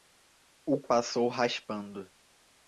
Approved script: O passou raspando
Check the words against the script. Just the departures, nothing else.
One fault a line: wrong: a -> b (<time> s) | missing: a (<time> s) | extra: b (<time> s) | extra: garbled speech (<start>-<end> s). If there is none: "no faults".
no faults